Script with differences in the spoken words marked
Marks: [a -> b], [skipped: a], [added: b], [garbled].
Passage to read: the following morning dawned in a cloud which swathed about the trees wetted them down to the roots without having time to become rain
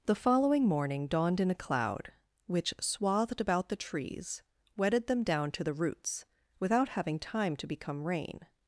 the following morning dawned in a cloud which swathed about the trees wetted them down to the roots without having time to become rain